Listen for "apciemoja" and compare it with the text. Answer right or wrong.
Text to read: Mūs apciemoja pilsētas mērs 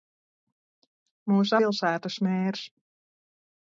wrong